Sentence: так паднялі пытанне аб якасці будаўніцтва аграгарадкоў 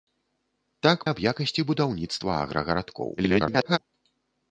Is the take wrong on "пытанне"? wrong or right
wrong